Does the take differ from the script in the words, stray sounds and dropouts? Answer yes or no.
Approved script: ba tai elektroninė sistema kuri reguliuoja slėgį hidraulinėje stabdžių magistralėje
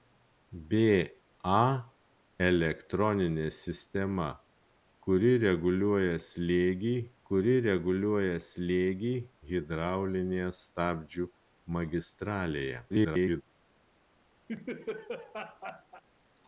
yes